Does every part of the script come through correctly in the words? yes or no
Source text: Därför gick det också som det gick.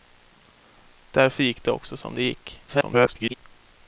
no